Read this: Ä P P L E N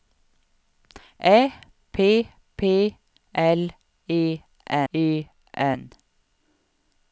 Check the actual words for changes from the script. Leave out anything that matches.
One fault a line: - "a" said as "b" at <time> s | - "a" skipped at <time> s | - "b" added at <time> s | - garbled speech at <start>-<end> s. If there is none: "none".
- "E" added at 4.9 s